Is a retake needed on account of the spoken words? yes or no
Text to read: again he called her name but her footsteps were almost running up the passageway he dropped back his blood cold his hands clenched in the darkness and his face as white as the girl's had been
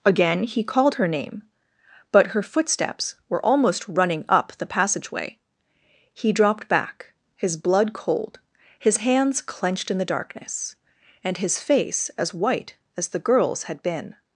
no